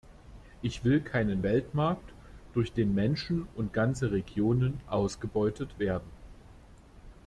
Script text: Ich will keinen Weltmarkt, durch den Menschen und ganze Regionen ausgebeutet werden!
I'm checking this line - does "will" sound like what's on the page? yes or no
yes